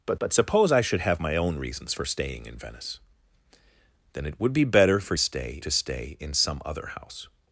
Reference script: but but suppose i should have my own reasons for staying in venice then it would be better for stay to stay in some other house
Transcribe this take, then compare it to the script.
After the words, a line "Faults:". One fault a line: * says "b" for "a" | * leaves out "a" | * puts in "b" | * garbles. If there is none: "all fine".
but but suppose i should have my own reasons for staying in venice then it would be better for stay to stay in some other house
Faults:
all fine